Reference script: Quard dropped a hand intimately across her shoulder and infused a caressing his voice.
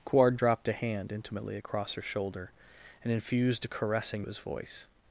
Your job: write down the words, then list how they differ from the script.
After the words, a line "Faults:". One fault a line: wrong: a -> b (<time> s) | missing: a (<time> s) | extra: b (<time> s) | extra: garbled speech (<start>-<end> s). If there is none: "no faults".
Quard dropped a hand intimately across her shoulder and infused a caressing his voice.
Faults:
no faults